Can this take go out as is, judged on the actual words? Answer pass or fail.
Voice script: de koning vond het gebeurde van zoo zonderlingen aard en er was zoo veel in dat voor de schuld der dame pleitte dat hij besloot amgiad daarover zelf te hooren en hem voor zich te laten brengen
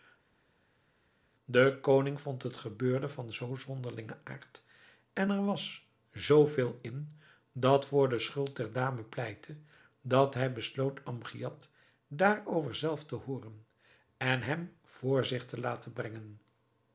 pass